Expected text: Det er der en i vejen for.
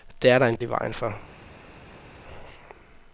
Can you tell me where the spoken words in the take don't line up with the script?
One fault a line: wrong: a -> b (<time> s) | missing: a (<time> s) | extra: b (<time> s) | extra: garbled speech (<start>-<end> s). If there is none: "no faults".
no faults